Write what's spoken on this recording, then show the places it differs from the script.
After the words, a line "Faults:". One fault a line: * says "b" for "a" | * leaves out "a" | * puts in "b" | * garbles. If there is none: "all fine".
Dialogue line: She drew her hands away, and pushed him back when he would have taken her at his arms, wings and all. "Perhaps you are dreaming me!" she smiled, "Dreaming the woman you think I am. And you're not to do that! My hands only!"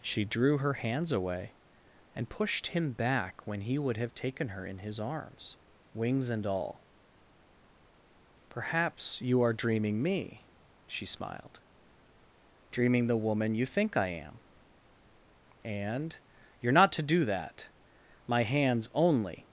She drew her hands away, and pushed him back when he would have taken her in his arms, wings and all. "Perhaps you are dreaming me!" she smiled, "Dreaming the woman you think I am. And you're not to do that! My hands only!"
Faults:
* says "in" for "at"